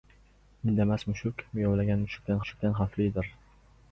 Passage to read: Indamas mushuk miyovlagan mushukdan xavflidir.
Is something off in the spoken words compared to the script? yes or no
yes